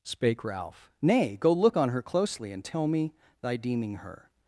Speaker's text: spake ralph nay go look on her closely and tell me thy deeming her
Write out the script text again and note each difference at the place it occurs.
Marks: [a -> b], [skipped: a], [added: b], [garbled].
spake ralph nay go look on her closely and tell me thy deeming her